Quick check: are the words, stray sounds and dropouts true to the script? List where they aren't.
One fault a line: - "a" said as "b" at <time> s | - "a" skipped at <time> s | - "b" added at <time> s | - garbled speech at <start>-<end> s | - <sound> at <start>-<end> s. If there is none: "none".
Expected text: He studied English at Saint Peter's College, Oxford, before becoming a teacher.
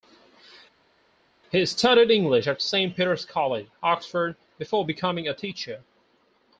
none